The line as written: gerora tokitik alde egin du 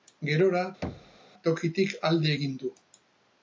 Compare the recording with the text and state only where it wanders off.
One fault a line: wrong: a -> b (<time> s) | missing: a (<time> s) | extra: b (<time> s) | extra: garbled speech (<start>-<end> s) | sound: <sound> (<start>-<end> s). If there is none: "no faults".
sound: thud (0.8-1.2 s)